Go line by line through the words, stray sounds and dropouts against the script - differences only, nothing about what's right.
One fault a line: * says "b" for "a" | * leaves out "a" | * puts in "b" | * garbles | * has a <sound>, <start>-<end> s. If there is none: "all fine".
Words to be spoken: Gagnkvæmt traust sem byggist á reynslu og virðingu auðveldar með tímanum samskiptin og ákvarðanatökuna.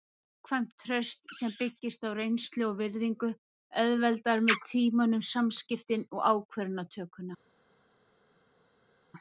all fine